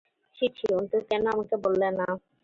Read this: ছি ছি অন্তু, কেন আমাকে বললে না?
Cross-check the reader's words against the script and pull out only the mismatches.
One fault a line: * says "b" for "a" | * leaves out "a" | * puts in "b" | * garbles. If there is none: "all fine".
all fine